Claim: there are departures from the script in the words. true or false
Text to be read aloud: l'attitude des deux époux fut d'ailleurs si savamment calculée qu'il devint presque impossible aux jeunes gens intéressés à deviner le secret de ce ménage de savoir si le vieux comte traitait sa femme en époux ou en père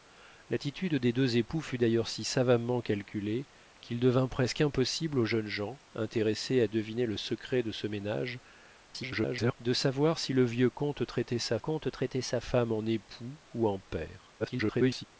true